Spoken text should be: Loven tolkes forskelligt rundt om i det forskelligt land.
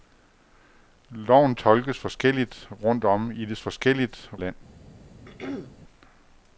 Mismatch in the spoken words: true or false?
false